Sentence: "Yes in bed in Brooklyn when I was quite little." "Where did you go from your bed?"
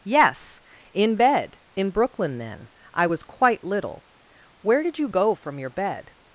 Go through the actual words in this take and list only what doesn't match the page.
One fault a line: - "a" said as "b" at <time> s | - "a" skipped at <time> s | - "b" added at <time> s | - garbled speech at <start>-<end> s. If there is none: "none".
- "when" said as "then" at 2.4 s